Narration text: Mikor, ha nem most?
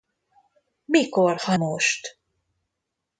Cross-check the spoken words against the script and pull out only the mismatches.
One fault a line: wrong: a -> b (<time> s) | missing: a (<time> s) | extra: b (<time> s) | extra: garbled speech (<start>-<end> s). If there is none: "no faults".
missing: nem (1.6 s)